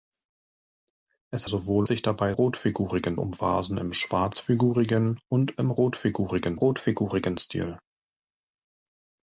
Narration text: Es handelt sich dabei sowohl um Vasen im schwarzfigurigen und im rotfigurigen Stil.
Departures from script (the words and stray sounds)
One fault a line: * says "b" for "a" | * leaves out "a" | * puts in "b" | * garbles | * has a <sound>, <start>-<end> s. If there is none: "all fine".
* says "sowohl" for "handelt"
* says "rotfigurigen" for "sowohl"
* puts in "rotfigurigen"